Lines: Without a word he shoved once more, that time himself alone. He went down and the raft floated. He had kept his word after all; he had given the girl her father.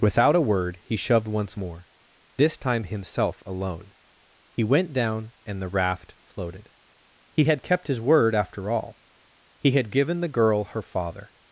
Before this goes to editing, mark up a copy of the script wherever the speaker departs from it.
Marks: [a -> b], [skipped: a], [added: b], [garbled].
Without a word he shoved once more, [that -> this] time himself alone. He went down and the raft floated. He had kept his word after all; he had given the girl her father.